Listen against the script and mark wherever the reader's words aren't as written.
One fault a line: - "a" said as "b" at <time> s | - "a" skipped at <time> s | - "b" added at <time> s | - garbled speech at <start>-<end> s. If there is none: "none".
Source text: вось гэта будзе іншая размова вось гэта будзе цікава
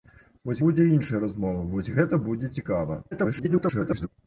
- "гэта" skipped at 0.6 s
- garbled speech at 3.1-4.1 s